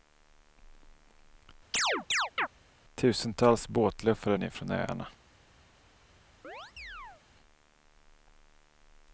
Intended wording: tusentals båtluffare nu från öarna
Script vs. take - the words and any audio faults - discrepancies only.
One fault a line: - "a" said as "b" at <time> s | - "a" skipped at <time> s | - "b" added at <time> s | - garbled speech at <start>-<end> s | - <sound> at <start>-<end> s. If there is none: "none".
- chirp at 1.7-2.5 s
- chirp at 6.4-7.2 s